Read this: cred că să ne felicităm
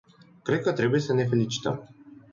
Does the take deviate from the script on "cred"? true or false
false